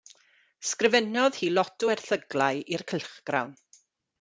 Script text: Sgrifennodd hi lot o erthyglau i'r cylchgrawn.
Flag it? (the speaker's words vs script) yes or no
no